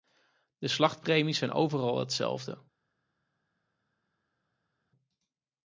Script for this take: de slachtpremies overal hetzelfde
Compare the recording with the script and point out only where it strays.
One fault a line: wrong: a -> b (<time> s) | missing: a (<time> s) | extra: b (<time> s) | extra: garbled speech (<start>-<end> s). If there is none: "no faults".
extra: zijn (1.4 s)